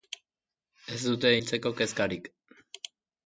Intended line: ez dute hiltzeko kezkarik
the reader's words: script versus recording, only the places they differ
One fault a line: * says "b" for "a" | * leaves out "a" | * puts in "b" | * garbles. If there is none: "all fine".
all fine